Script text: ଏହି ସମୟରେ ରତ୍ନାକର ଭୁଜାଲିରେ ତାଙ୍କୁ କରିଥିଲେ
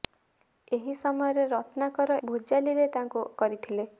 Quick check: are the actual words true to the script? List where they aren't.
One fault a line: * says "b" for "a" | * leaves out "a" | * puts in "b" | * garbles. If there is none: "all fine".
all fine